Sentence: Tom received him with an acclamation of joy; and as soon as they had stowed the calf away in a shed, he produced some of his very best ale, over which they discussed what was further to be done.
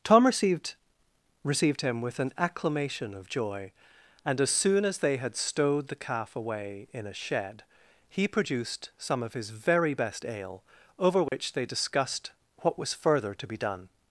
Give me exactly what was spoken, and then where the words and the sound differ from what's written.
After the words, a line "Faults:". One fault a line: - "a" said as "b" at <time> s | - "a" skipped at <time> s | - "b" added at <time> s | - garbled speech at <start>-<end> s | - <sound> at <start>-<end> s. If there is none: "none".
Tom received received him with an acclamation of joy; and as soon as they had stowed the calf away in a shed, he produced some of his very best ale, over which they discussed what was further to be done.
Faults:
- "received" added at 1.4 s
- dropout at 11.3-11.3 s